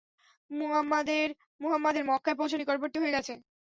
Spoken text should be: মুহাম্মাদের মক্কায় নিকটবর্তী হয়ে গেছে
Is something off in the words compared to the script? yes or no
yes